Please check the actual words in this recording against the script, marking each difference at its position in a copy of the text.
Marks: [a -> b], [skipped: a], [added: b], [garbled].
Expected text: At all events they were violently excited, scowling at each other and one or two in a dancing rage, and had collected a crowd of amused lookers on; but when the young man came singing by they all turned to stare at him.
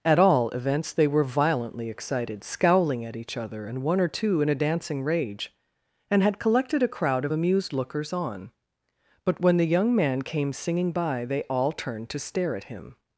At all events they were violently excited, scowling at each other and one or two in a dancing rage, and had collected a crowd of amused lookers on; but when the young man came singing by they all turned to stare at him.